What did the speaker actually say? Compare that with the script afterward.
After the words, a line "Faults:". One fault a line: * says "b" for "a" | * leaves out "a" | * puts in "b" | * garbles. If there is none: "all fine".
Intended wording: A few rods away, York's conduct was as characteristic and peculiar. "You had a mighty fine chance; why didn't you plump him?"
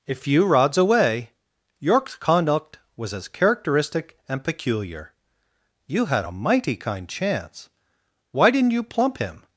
A few rods away, York's conduct was as characteristic and peculiar. "You had a mighty kind chance; why didn't you plump him?"
Faults:
* says "kind" for "fine"